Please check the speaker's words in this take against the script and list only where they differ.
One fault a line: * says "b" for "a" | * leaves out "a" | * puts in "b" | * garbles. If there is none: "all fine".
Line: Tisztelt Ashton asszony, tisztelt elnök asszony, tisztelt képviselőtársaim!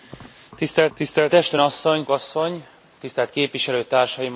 * puts in "tisztelt"
* leaves out "tisztelt elnök"